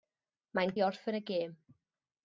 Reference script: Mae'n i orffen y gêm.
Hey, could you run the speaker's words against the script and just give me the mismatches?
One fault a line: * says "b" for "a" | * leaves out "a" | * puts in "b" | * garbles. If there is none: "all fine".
all fine